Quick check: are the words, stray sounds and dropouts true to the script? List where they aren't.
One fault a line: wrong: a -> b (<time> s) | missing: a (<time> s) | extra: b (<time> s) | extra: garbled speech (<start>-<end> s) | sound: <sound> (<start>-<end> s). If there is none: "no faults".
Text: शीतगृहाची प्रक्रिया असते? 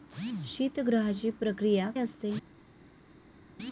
no faults